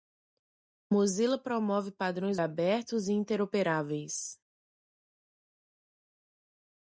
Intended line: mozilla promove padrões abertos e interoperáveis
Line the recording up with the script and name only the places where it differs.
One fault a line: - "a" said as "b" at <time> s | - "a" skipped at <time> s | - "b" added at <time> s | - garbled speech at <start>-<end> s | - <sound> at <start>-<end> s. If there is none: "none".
none